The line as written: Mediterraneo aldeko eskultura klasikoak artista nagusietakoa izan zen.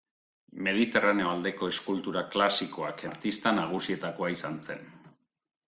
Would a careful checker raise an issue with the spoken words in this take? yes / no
no